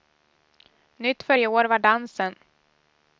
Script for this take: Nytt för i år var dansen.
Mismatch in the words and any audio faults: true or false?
false